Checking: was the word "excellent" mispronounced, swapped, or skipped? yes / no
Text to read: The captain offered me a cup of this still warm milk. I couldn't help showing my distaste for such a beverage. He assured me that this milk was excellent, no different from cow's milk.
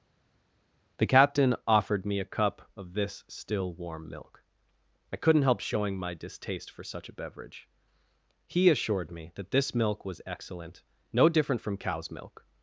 no